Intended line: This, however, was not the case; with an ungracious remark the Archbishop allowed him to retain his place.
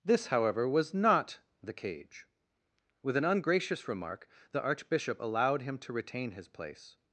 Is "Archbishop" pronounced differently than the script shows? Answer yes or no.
no